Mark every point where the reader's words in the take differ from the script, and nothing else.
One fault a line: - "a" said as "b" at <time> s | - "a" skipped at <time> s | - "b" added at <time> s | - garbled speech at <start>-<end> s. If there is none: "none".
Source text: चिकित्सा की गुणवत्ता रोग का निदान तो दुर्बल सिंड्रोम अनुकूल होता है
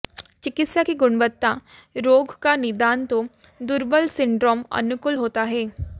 none